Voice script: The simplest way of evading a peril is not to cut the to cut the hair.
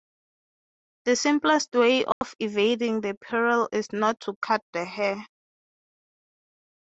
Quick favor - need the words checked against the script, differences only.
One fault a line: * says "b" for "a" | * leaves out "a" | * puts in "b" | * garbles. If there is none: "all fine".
* says "the" for "a"
* leaves out "to cut the"